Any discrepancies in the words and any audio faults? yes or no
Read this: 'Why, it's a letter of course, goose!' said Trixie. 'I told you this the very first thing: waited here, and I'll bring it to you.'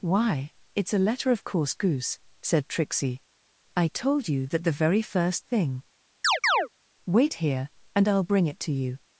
yes